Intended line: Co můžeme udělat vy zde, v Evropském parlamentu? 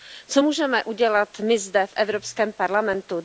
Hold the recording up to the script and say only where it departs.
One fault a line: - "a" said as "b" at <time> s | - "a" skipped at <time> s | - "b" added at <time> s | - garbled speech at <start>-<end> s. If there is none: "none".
- "vy" said as "my" at 1.4 s